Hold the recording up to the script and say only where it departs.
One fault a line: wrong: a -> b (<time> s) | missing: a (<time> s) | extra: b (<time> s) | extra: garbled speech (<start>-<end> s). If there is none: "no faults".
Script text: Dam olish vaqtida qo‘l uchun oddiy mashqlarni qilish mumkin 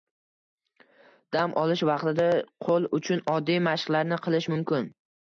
no faults